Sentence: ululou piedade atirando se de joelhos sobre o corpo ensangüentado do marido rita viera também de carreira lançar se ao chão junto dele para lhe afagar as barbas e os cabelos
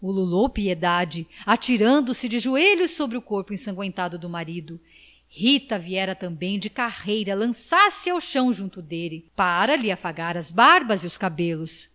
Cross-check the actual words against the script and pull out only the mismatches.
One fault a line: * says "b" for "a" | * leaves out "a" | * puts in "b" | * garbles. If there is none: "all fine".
all fine